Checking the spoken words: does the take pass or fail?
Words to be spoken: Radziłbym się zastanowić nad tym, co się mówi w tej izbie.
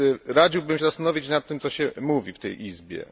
pass